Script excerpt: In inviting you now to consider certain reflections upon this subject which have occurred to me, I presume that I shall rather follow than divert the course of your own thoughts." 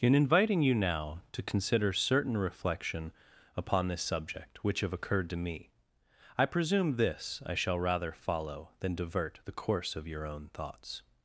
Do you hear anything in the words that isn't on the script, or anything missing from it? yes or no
yes